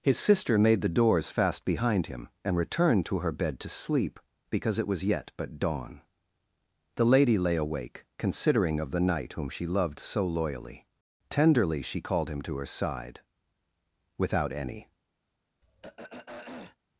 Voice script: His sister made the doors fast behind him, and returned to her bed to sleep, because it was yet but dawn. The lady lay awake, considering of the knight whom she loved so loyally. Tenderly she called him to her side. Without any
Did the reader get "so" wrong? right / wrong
right